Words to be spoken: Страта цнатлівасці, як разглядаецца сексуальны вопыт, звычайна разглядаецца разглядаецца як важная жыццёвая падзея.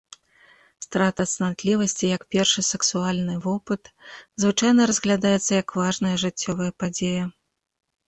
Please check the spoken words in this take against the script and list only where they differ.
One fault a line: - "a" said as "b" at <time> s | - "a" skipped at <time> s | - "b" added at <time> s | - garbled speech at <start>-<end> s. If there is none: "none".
- "разглядаецца" said as "першы" at 2.4 s
- "разглядаецца" skipped at 5.5 s